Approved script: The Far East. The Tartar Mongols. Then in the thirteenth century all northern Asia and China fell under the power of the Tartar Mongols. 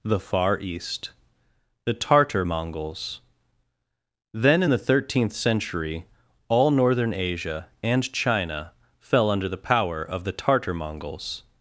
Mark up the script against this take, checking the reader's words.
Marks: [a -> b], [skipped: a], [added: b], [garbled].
The Far East. The Tartar Mongols. Then in the thirteenth century all northern Asia and China fell under the power of the Tartar Mongols.